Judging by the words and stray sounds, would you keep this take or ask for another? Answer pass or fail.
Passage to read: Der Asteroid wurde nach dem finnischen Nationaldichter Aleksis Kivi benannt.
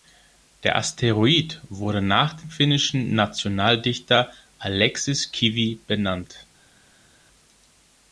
pass